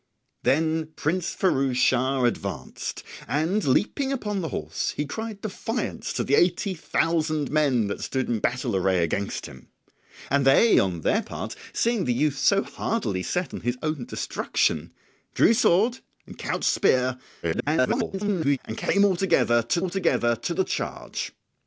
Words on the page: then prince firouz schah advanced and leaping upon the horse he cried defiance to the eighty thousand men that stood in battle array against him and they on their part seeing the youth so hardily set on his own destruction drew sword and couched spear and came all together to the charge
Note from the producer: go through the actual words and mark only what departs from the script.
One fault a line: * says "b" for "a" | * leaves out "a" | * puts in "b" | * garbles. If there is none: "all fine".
* garbles
* puts in "all together to"